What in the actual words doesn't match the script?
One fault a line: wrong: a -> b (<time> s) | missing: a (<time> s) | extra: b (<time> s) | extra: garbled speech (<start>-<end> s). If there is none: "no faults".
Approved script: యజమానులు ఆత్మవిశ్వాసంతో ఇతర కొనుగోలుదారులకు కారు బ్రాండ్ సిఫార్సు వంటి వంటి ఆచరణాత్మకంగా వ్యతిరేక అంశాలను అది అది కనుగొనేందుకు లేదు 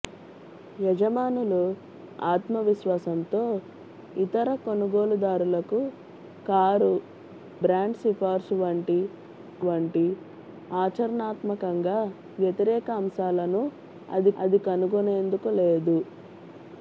no faults